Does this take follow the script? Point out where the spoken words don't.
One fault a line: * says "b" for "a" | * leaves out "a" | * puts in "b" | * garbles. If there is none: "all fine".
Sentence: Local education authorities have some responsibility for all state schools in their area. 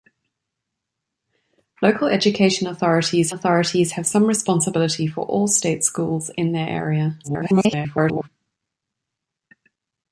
* puts in "authorities"
* garbles